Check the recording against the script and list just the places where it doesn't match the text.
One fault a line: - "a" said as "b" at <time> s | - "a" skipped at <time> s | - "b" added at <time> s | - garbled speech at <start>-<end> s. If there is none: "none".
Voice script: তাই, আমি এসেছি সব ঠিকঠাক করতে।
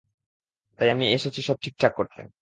none